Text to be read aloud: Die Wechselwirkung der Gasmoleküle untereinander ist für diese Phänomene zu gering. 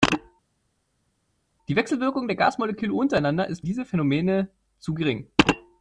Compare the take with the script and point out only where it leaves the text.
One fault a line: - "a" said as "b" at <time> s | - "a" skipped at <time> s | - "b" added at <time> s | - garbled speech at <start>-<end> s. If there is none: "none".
- "für" skipped at 3.7 s